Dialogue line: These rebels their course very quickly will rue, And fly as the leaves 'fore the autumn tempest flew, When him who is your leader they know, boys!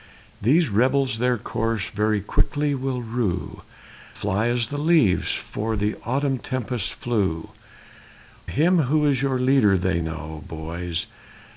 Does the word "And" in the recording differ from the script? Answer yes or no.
yes